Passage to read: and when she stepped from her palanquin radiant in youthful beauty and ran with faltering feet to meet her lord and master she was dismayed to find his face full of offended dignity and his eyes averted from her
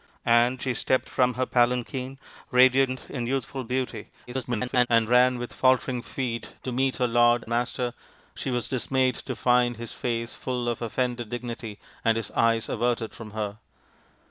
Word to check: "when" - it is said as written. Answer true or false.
false